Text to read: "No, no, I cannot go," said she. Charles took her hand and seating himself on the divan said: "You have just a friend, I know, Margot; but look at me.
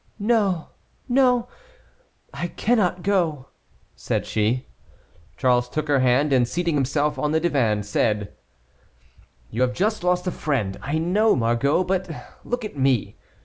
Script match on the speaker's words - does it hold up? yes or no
no